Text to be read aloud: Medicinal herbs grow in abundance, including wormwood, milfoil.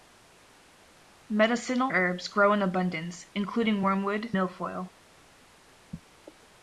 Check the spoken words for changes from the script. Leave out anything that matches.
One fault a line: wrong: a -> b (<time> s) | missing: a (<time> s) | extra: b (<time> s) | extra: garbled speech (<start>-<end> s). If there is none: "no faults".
no faults